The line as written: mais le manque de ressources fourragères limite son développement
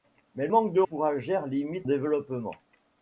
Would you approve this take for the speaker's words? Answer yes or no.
no